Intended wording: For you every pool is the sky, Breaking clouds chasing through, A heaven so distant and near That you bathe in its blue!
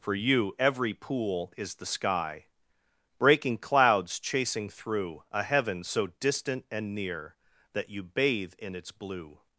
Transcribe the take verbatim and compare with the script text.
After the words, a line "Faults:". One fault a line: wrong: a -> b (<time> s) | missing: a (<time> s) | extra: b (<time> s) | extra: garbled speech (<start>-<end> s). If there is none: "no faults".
For you every pool is the sky, Breaking clouds chasing through, A heaven so distant and near That you bathe in its blue!
Faults:
no faults